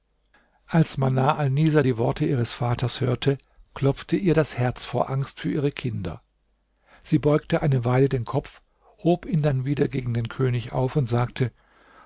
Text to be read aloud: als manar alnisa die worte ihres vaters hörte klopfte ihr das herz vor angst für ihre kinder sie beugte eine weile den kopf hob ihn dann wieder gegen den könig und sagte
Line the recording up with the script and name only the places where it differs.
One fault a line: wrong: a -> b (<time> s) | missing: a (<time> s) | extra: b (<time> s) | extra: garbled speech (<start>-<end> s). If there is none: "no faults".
extra: auf (10.7 s)